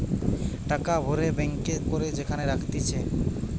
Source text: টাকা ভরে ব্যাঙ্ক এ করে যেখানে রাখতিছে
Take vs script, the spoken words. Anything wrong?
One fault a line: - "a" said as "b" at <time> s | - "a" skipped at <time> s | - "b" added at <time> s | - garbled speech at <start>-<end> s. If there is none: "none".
none